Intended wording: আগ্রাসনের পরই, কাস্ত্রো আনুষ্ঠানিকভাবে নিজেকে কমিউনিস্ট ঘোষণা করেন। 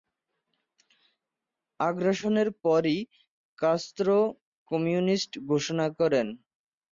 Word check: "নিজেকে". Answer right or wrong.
wrong